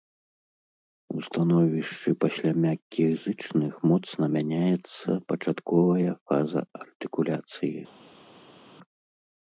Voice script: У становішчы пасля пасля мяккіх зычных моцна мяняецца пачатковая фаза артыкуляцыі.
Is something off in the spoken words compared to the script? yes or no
yes